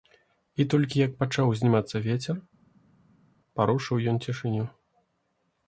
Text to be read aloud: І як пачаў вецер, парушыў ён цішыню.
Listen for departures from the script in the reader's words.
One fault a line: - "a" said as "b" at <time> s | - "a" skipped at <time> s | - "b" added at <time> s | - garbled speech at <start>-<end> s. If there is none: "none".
- "толькі" added at 0.7 s
- "узнімацца" added at 1.5 s